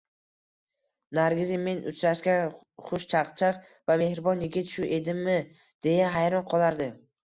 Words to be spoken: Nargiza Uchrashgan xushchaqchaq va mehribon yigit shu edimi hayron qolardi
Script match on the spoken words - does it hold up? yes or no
no